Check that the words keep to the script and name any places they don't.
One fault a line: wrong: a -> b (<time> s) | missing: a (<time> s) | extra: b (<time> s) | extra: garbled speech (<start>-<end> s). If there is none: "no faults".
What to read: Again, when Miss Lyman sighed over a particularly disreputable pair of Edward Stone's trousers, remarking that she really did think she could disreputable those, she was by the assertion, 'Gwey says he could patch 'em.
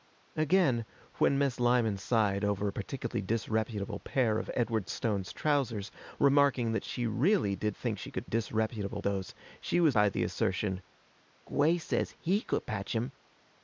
no faults